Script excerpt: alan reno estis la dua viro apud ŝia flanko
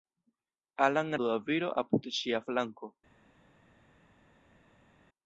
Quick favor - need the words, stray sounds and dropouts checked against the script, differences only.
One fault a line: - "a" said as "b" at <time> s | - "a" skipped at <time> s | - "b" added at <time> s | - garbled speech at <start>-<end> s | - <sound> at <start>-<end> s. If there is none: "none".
- "reno estis la" skipped at 1.1 s